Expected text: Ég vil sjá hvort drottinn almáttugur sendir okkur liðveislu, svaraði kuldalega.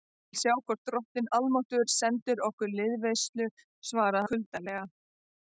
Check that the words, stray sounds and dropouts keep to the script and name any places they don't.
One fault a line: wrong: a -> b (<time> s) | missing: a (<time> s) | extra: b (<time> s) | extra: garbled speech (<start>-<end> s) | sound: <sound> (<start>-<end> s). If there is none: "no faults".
no faults